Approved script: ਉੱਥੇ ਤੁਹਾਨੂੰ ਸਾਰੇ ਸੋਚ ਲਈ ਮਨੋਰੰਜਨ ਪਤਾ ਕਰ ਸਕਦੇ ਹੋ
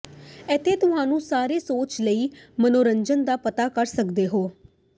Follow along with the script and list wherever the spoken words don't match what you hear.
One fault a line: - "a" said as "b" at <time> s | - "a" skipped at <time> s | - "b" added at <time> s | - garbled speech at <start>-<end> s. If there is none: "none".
- "ਉੱਥੇ" said as "ਇੱਥੇ" at 0.5 s
- "ਦਾ" added at 3.3 s